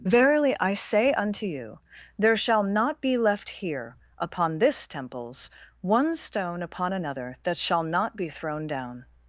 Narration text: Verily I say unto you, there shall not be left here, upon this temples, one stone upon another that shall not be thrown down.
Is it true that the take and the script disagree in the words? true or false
false